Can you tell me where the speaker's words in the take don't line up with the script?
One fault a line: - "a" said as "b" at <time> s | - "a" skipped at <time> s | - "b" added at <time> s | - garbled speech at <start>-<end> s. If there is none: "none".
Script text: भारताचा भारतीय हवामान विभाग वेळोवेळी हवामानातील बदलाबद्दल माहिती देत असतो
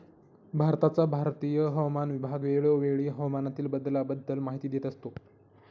none